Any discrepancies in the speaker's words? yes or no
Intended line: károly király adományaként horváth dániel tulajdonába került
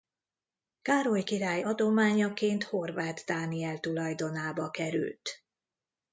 no